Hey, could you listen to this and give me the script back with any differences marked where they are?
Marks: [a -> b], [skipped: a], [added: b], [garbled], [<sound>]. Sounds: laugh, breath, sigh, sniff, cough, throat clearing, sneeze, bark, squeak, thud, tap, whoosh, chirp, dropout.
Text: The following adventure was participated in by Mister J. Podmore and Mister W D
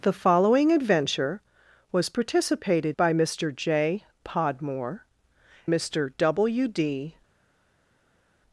The following adventure was participated [skipped: in] by Mister J. Podmore [skipped: and] Mister W D